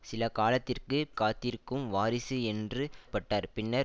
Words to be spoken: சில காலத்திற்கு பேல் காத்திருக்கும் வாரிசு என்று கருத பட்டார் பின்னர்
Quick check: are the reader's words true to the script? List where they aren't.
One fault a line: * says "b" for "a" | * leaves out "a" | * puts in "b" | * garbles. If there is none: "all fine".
* leaves out "பேல்"
* leaves out "கருத"